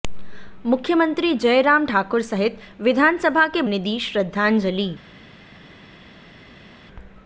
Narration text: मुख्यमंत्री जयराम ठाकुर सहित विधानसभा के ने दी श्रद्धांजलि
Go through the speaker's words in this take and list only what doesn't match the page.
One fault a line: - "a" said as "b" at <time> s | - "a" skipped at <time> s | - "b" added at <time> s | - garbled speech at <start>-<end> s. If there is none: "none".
none